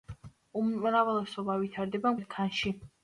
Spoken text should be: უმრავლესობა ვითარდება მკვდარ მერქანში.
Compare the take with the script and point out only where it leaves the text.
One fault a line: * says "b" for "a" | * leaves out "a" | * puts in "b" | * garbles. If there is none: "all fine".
* leaves out "მკვდარ"